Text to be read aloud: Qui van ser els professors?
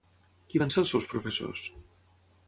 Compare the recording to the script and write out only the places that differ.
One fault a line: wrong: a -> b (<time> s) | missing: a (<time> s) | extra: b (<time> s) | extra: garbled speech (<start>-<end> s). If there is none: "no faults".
extra: seus (1.0 s)